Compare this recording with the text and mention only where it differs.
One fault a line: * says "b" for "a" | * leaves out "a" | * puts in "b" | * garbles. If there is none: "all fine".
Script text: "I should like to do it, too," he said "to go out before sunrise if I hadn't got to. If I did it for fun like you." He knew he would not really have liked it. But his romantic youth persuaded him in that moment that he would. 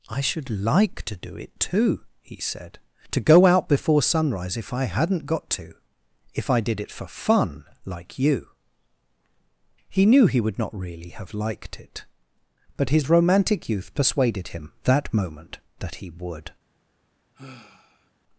* leaves out "in"